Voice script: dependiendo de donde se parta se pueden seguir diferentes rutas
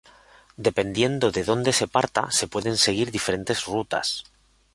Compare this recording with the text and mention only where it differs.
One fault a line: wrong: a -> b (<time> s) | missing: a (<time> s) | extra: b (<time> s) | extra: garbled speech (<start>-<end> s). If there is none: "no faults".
no faults